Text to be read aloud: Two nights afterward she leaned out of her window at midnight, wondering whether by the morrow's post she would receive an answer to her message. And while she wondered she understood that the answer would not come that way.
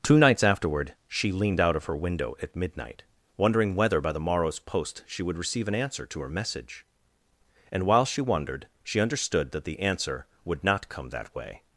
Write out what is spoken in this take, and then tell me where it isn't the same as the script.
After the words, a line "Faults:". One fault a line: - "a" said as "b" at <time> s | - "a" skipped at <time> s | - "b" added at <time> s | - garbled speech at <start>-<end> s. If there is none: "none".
Two nights afterward she leaned out of her window at midnight, wondering whether by the morrow's post she would receive an answer to her message. And while she wondered she understood that the answer would not come that way.
Faults:
none